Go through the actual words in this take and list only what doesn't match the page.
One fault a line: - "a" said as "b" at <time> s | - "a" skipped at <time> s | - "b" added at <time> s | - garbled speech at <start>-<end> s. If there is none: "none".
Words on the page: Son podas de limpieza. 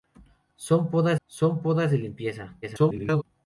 - "son podas" added at 1.3 s
- garbled speech at 2.6-3.2 s